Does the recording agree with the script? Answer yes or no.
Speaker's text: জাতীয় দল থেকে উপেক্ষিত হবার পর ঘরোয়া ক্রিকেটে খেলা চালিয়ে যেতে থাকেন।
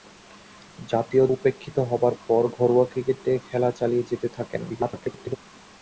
no